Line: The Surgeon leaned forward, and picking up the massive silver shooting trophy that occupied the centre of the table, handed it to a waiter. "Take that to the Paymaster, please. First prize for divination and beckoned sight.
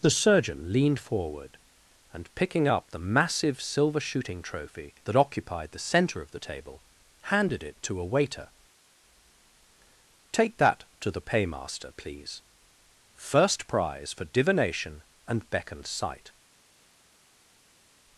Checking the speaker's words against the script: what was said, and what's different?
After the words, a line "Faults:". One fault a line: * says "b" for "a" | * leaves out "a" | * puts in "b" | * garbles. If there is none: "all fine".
The Surgeon leaned forward, and picking up the massive silver shooting trophy that occupied the centre of the table, handed it to a waiter. "Take that to the Paymaster, please. First prize for divination and beckoned sight.
Faults:
all fine